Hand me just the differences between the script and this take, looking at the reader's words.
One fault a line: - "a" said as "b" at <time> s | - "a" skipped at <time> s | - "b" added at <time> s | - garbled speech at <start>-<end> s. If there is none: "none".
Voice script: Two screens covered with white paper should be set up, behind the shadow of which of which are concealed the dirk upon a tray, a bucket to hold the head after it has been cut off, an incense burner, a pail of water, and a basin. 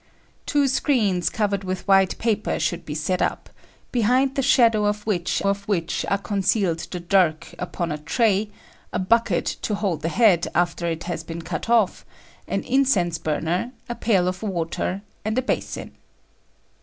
none